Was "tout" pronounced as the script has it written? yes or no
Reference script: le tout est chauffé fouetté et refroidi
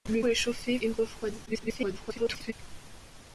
no